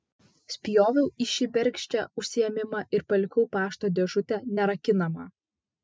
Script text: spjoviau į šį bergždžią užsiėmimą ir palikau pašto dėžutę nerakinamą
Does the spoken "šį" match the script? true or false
true